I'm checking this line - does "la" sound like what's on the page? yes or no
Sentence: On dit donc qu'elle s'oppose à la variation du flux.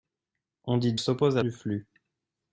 no